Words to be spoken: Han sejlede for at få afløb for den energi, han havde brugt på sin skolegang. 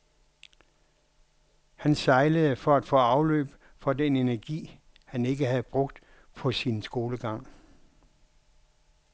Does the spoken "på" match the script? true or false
true